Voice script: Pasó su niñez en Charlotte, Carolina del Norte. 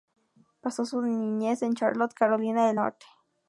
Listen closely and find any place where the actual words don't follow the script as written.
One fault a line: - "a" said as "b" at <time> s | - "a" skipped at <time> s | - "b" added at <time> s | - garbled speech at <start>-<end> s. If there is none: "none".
none